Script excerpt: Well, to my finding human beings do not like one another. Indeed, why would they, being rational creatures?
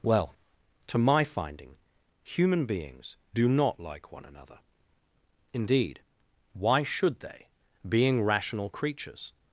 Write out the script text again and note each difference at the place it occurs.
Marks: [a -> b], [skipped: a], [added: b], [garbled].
Well, to my finding human beings do not like one another. Indeed, why [would -> should] they, being rational creatures?